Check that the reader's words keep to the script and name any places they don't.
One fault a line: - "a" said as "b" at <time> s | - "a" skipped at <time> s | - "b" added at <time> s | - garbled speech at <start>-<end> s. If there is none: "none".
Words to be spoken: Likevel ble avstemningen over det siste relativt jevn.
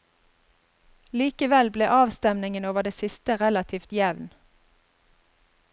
none